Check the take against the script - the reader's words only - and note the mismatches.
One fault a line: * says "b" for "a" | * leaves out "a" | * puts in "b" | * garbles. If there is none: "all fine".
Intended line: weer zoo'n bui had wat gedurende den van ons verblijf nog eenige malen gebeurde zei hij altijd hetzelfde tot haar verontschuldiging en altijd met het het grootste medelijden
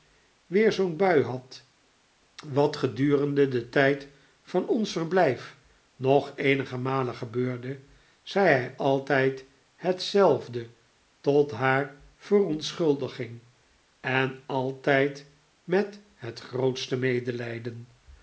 * puts in "tijd"
* leaves out "het"